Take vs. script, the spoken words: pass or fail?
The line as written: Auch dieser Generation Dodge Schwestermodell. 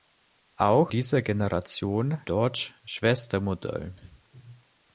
pass